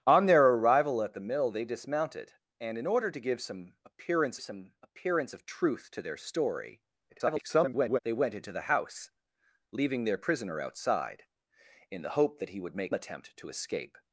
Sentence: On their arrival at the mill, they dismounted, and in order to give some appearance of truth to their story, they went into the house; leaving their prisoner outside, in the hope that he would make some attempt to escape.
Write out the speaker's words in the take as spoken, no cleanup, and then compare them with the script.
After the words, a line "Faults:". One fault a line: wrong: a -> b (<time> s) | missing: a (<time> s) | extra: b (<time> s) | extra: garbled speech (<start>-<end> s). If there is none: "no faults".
On their arrival at the mill, they dismounted, and in order to give some appearance some appearance of truth to their story, [garbled] they went into the house; leaving their prisoner outside, in the hope that he would make attempt to escape.
Faults:
extra: some appearance (4.4 s)
extra: garbled speech (7.1-8.0 s)
missing: some (12.9 s)